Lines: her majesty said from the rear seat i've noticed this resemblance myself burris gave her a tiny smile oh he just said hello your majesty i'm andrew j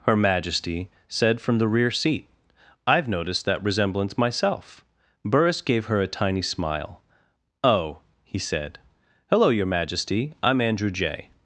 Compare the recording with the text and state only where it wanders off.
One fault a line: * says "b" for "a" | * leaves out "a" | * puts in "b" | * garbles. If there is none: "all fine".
* says "that" for "this"
* leaves out "just"